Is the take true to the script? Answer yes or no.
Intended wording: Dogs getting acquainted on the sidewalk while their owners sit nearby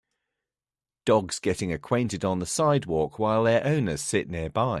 yes